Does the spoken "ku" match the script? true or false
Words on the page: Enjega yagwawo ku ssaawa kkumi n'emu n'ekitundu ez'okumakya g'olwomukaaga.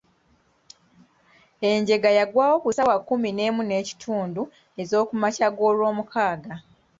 true